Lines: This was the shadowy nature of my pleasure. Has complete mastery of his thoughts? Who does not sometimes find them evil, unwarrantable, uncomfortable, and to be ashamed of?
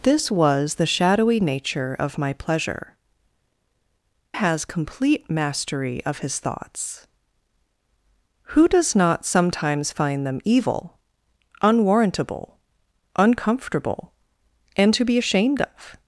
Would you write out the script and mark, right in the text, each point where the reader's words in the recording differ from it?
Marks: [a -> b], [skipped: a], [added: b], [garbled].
This was the shadowy nature of my pleasure. Has complete mastery of his thoughts? Who does not sometimes find them evil, unwarrantable, uncomfortable, and to be ashamed of?